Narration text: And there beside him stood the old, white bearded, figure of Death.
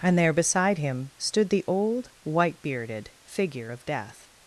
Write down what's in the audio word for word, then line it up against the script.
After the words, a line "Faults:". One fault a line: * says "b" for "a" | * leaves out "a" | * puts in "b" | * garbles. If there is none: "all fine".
And there beside him stood the old, white bearded, figure of Death.
Faults:
all fine